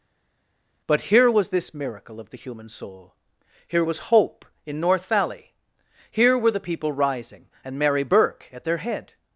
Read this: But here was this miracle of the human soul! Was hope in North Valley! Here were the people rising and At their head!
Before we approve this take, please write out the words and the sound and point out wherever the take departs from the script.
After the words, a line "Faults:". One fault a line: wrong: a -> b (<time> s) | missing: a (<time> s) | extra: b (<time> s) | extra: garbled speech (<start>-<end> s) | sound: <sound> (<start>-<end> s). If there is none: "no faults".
But here was this miracle of the human soul! Here was hope in North Valley! Here were the people rising and Mary Burke at their head!
Faults:
extra: Here (3.7 s)
extra: Mary Burke (7.8 s)